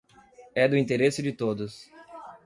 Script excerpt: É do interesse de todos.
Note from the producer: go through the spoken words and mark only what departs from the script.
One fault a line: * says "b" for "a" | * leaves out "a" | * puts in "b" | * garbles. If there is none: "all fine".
all fine